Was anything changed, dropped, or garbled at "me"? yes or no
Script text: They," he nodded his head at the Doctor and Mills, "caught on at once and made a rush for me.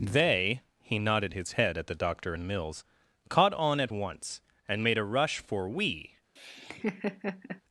yes